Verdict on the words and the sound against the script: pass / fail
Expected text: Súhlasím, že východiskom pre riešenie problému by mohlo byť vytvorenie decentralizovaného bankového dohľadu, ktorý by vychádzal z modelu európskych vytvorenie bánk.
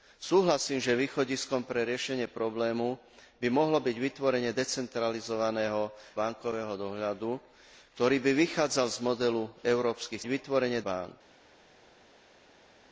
pass